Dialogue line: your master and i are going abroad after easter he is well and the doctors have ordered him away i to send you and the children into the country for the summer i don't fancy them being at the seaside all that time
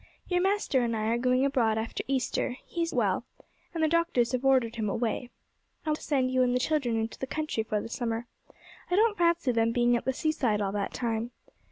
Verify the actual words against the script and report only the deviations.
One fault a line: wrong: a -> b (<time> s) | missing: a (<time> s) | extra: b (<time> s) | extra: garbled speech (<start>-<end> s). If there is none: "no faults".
no faults